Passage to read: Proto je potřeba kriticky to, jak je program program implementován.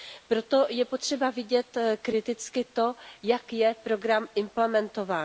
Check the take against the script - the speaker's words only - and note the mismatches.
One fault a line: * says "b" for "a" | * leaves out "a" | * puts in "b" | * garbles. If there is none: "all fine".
* puts in "vidět"
* leaves out "program"